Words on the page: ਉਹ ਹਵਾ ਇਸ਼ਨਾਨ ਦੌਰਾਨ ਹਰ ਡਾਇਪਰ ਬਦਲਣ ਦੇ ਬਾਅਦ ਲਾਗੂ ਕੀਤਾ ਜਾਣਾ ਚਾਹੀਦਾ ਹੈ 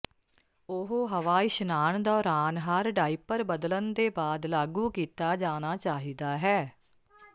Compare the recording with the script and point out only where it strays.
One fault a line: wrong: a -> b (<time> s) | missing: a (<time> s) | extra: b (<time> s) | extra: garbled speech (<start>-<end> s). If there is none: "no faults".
no faults